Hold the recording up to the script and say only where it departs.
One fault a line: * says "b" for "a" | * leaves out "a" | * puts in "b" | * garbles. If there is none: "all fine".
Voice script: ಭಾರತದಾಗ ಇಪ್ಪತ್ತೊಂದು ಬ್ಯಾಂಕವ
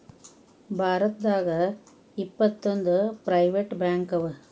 * puts in "ಪ್ರೈವೆಟ್"